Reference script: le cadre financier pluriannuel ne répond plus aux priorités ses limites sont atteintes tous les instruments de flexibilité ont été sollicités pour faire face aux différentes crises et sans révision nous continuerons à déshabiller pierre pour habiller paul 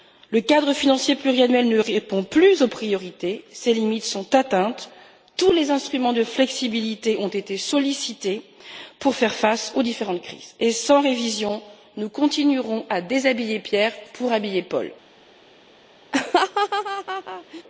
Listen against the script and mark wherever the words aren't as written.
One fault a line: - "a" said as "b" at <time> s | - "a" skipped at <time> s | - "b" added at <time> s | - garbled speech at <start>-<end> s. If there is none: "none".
none